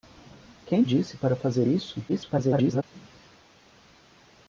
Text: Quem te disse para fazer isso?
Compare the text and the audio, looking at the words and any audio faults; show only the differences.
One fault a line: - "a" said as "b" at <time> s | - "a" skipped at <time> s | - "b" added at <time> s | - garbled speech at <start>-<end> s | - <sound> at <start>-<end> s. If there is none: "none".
- "te" skipped at 0.8 s
- garbled speech at 2.1-2.8 s